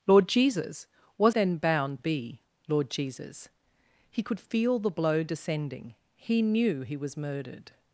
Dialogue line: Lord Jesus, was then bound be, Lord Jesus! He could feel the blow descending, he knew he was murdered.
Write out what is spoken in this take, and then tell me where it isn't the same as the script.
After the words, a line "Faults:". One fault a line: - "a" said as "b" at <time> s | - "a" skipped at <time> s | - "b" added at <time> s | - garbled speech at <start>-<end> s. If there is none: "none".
Lord Jesus, was then bound be, Lord Jesus! He could feel the blow descending, he knew he was murdered.
Faults:
none